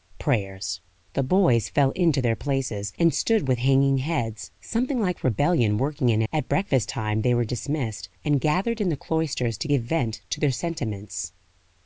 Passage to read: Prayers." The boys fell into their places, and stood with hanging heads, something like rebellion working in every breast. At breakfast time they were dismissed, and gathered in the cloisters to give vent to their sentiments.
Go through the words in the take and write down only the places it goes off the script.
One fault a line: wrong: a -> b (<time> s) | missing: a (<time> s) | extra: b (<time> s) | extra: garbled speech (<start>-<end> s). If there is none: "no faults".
missing: every breast (6.2 s)